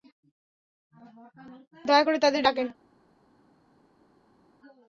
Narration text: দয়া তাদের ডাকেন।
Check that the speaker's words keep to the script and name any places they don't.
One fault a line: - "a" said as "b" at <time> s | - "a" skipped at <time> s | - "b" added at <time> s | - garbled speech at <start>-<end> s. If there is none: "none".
- "করে" added at 2.0 s